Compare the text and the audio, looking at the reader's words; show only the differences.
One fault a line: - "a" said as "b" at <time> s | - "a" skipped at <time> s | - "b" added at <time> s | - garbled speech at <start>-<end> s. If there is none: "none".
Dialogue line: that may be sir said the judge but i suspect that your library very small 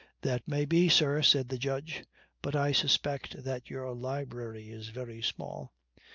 - "is" added at 4.7 s